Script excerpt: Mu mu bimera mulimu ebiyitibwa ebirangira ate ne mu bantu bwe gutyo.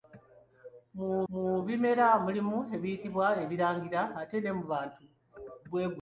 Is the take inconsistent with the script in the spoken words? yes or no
no